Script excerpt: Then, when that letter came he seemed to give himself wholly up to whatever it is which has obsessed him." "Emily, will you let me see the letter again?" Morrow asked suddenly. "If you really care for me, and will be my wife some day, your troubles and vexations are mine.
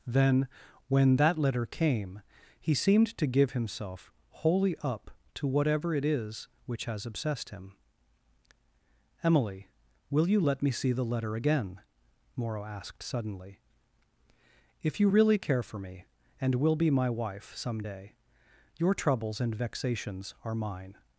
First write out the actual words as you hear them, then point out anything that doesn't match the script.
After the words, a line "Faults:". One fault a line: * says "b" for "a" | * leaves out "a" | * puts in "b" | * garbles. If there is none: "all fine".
Then, when that letter came he seemed to give himself wholly up to whatever it is which has obsessed him." "Emily, will you let me see the letter again?" Morrow asked suddenly. "If you really care for me, and will be my wife some day, your troubles and vexations are mine.
Faults:
all fine